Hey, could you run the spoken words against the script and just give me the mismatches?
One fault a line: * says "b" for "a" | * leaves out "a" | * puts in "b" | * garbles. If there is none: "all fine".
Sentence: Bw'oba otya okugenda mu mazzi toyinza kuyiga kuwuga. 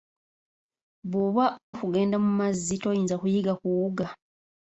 * leaves out "otya"